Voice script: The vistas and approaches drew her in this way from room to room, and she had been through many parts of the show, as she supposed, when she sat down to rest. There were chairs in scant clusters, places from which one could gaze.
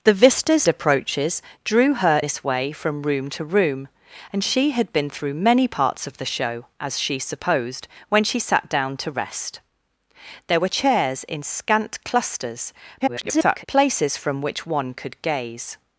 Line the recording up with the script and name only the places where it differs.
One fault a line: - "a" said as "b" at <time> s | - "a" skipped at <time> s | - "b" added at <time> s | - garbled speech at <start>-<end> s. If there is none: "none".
- "and" skipped at 0.7 s
- "in" skipped at 2.2 s
- garbled speech at 13.0-13.6 s